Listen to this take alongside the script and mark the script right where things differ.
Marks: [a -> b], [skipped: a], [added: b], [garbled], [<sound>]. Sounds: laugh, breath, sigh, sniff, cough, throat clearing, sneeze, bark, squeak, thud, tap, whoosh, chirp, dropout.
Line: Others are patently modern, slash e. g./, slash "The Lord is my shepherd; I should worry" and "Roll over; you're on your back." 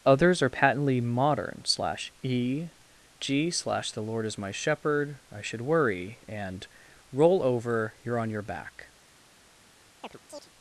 Others are patently modern, slash e. g./, slash "The Lord is my shepherd; I should worry" and "Roll over; you're on your back." [chirp]